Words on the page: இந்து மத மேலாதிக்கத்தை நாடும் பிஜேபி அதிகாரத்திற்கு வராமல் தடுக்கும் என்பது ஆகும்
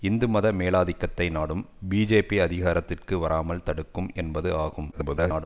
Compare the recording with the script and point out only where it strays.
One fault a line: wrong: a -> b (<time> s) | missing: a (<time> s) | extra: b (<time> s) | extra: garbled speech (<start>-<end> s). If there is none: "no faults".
extra: garbled speech (4.9-5.5 s)